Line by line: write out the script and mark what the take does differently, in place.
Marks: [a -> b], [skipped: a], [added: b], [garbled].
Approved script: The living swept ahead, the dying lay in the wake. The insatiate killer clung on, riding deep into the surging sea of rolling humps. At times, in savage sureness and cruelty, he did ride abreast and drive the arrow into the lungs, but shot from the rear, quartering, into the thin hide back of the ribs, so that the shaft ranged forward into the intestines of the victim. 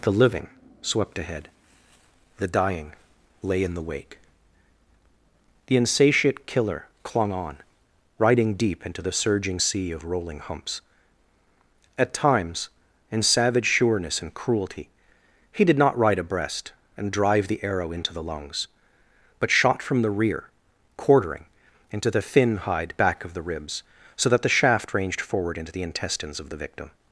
The living swept ahead, the dying lay in the wake. The insatiate killer clung on, riding deep into the surging sea of rolling humps. At times, in savage sureness and cruelty, he did [added: not] ride abreast and drive the arrow into the lungs, but shot from the rear, quartering, into the thin hide back of the ribs, so that the shaft ranged forward into the intestines of the victim.